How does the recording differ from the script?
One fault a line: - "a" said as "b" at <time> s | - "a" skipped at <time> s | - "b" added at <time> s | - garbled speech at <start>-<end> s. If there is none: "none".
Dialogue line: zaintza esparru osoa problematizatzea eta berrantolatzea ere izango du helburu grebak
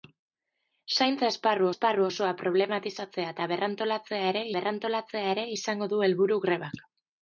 - "esparru" added at 1.7 s
- "berrantolatzea ere" added at 4.6 s